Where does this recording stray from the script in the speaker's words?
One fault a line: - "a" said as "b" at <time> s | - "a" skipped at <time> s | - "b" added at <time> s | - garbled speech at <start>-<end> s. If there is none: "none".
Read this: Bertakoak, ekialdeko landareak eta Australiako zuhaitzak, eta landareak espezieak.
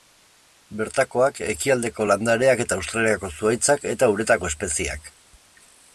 - "landareak" said as "uretako" at 4.2 s